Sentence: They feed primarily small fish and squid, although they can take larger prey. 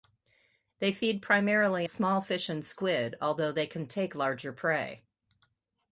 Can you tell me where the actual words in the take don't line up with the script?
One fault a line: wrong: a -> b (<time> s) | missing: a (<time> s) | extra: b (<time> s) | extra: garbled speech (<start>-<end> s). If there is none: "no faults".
no faults